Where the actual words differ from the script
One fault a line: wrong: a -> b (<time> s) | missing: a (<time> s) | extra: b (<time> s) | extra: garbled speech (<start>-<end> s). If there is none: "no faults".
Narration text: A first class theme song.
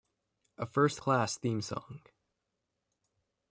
no faults